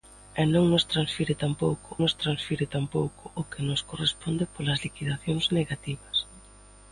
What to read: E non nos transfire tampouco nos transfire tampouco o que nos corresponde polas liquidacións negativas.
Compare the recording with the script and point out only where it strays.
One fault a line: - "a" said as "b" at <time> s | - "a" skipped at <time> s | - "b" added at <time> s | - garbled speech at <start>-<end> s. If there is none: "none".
none